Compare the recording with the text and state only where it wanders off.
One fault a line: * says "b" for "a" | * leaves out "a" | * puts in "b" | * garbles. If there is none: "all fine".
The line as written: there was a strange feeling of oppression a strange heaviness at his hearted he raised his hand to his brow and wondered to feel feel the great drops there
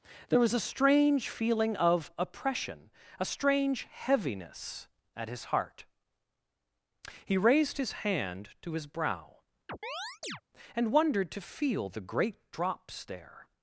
* says "heart" for "hearted"
* leaves out "feel"